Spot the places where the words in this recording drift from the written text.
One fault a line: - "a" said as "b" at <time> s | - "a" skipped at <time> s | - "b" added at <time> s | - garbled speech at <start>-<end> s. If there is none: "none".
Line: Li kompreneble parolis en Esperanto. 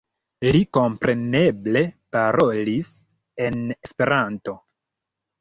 none